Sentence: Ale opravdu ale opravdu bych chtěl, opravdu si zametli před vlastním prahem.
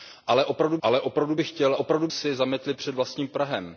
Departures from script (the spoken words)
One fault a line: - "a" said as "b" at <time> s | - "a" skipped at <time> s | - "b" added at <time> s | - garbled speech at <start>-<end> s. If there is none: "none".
none